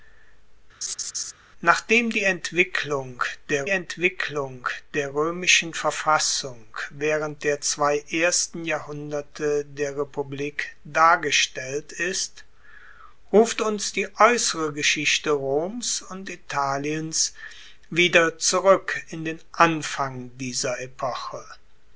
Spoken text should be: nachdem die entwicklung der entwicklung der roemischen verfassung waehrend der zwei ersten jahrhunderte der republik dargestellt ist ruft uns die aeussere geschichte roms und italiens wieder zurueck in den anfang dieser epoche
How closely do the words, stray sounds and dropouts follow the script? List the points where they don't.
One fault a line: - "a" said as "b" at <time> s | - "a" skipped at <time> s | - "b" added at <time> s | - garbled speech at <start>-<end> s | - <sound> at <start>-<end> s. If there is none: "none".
- laugh at 0.8-1.3 s